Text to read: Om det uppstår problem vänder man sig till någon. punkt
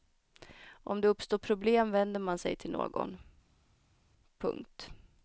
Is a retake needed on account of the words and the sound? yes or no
no